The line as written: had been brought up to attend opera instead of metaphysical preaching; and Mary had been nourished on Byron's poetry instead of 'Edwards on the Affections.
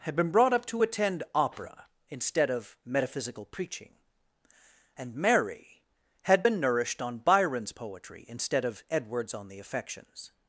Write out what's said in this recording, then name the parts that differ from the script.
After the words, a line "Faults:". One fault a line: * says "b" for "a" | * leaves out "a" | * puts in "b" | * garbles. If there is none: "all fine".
had been brought up to attend opera instead of metaphysical preaching; and Mary had been nourished on Byron's poetry instead of 'Edwards on the Affections.
Faults:
all fine